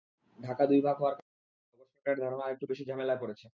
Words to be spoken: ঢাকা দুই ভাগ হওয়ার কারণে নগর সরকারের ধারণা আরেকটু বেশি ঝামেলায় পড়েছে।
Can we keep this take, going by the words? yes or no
yes